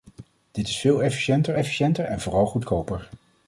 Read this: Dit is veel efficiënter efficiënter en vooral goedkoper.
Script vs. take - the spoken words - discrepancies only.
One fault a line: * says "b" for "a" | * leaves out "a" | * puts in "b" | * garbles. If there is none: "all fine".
all fine